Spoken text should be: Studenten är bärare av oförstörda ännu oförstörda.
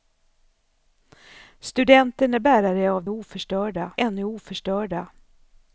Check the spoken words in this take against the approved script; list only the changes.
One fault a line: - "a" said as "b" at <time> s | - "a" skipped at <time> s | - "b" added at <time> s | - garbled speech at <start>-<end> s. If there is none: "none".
none